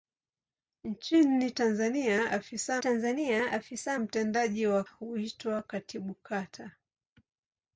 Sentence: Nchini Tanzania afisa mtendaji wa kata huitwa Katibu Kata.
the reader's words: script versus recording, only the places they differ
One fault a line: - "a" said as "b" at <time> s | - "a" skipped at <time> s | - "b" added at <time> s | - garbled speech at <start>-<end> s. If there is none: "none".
- "Tanzania afisa" added at 2.8 s
- "kata" skipped at 4.8 s